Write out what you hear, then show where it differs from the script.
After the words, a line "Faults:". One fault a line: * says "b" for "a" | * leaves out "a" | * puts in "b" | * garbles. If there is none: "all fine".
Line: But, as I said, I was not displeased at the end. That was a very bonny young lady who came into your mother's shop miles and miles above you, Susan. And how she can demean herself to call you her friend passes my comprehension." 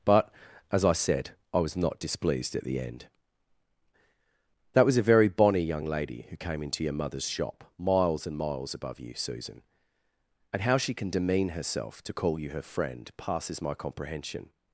But, as I said, I was not displeased at the end. That was a very bonny young lady who came into your mother's shop miles and miles above you, Susan. And how she can demean herself to call you her friend passes my comprehension."
Faults:
all fine